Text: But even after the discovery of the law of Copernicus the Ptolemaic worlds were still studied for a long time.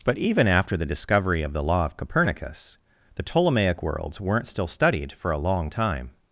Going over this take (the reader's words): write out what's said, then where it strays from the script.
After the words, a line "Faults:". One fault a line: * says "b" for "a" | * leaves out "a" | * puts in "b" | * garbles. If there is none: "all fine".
But even after the discovery of the law of Copernicus the Ptolemaic worlds weren't still studied for a long time.
Faults:
* says "weren't" for "were"